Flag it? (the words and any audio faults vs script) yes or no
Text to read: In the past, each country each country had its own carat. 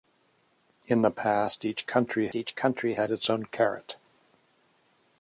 no